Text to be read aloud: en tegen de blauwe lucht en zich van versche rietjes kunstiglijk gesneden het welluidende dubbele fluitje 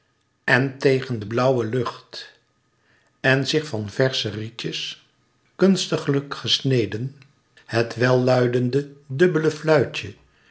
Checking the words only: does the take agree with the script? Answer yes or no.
yes